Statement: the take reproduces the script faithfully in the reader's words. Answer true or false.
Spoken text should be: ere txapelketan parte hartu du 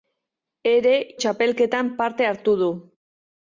true